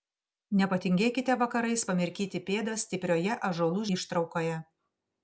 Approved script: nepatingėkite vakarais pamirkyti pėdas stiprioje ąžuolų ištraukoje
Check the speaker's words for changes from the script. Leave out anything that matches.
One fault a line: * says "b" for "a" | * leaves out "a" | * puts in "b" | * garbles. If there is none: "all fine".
all fine